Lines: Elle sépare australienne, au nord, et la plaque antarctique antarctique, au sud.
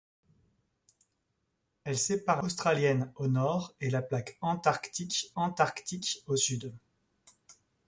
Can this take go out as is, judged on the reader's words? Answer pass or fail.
pass